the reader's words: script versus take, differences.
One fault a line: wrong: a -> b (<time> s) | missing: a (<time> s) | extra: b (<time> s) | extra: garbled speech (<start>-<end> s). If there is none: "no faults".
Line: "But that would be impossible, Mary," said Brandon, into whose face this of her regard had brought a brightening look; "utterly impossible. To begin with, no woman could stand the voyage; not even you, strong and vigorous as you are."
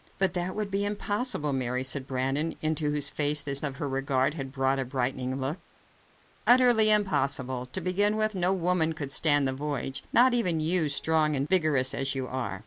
no faults